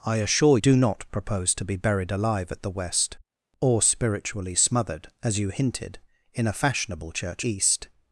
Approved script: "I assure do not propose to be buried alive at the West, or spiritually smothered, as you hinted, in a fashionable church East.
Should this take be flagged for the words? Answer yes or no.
no